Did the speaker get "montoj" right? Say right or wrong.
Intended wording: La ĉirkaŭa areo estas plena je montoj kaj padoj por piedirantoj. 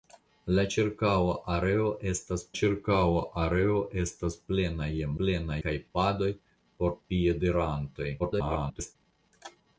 wrong